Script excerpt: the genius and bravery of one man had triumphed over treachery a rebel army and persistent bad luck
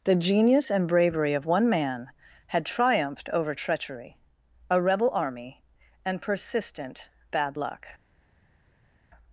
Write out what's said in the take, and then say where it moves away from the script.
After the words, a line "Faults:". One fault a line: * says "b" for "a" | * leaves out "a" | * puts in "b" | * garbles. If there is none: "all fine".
the genius and bravery of one man had triumphed over treachery a rebel army and persistent bad luck
Faults:
all fine